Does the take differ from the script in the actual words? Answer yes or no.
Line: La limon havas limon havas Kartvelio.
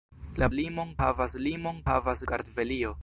no